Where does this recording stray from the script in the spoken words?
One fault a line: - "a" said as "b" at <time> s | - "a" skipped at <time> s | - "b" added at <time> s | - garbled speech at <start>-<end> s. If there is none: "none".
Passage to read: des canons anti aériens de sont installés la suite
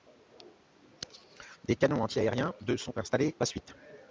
none